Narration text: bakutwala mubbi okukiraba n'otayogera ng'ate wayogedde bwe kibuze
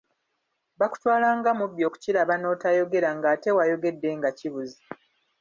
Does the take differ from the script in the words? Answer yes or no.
yes